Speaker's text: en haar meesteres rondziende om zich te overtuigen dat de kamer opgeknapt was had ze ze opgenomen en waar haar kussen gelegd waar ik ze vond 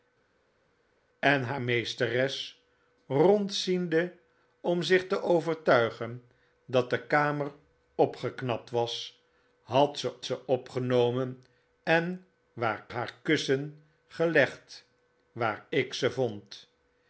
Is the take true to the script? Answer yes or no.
yes